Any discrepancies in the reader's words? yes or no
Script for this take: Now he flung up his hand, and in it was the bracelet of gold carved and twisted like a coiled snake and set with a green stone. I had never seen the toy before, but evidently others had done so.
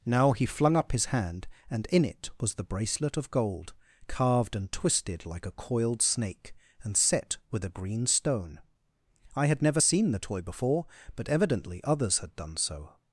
no